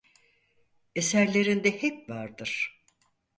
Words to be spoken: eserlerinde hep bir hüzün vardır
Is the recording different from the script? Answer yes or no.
yes